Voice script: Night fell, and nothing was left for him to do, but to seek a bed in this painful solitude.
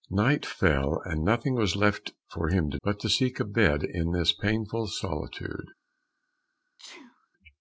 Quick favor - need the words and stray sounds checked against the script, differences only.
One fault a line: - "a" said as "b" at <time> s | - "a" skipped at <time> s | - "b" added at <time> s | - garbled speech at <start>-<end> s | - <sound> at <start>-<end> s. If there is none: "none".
- "do" skipped at 2.8 s
- sneeze at 6.8-7.3 s